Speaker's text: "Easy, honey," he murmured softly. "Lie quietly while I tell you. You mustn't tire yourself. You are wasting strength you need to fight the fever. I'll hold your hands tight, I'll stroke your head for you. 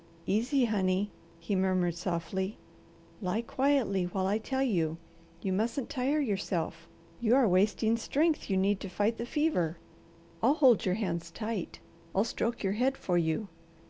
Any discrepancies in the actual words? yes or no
no